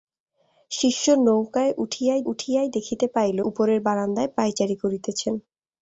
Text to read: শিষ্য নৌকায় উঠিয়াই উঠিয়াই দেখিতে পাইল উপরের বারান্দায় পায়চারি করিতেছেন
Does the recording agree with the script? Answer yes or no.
yes